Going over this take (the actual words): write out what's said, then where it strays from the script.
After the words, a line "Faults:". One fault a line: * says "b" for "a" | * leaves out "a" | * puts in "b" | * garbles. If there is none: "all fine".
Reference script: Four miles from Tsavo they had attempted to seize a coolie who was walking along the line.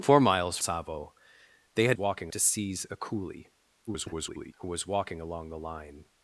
Four miles Tsavo they had walking to seize a coolie [garbled] who was walking along the line.
Faults:
* leaves out "from"
* says "walking" for "attempted"
* garbles